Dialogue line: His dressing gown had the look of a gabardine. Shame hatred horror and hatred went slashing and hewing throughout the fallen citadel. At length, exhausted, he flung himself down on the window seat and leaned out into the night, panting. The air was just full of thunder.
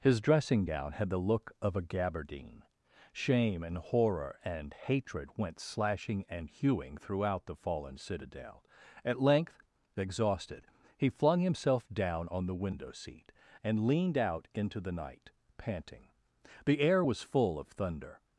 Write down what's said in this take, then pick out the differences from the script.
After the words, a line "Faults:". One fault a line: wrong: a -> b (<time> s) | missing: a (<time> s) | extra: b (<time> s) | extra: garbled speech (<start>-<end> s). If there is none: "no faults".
His dressing gown had the look of a gabardine. Shame and horror and hatred went slashing and hewing throughout the fallen citadel. At length, exhausted, he flung himself down on the window seat and leaned out into the night, panting. The air was full of thunder.
Faults:
wrong: hatred -> and (3.6 s)
missing: just (17.2 s)